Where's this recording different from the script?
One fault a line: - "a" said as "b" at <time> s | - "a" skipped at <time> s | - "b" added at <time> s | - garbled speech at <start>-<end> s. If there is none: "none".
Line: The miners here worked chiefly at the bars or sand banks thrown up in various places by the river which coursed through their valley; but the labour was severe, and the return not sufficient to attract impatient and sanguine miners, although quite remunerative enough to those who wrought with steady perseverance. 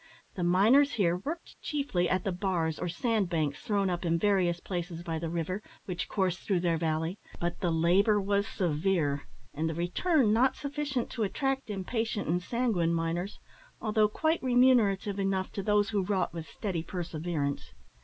none